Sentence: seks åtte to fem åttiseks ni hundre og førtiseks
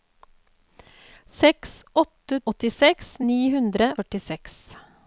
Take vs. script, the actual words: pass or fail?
fail